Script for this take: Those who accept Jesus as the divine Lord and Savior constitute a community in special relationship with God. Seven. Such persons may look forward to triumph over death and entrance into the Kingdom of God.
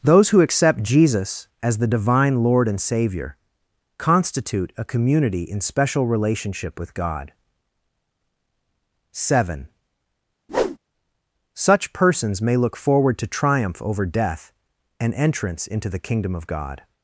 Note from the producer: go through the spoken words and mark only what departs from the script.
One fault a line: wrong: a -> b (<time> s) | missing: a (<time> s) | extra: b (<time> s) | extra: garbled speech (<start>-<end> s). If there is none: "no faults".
no faults